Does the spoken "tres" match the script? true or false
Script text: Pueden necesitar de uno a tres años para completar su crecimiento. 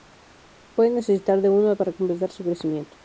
false